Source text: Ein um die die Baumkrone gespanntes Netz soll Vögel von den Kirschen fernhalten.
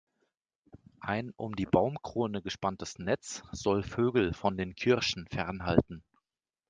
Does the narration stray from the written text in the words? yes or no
yes